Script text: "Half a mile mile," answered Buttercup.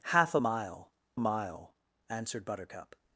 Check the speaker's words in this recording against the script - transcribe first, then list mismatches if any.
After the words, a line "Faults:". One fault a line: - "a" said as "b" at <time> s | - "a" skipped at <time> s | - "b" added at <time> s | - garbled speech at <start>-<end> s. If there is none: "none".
"Half a mile mile," answered Buttercup.
Faults:
none